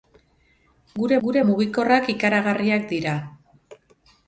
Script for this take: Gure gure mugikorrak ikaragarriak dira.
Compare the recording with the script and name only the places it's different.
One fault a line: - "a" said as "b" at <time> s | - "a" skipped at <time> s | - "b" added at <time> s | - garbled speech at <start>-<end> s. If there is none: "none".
none